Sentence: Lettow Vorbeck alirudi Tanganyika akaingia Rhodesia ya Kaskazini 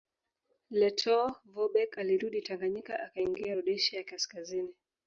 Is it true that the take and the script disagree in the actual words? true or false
false